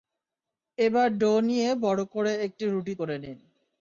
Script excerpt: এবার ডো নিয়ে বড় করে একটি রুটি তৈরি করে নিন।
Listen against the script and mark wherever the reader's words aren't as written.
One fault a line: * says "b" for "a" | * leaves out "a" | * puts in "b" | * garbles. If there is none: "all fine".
* leaves out "তৈরি"